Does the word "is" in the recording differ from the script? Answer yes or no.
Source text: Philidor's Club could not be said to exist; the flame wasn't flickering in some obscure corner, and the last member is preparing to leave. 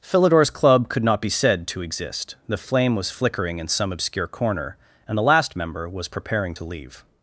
yes